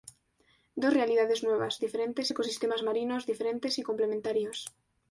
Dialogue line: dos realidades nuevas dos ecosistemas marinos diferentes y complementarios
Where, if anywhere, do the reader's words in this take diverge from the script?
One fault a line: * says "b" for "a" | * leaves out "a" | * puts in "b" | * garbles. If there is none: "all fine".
* says "diferentes" for "dos"